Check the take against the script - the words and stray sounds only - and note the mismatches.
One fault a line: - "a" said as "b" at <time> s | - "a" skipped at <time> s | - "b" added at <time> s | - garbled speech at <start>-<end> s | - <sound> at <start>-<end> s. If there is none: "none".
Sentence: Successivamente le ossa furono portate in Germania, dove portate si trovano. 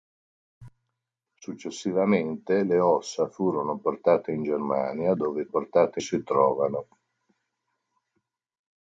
none